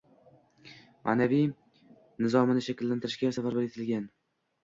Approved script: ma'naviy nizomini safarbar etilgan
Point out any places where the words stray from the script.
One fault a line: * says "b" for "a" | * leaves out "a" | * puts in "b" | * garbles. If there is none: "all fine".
* puts in "shakllantirishga"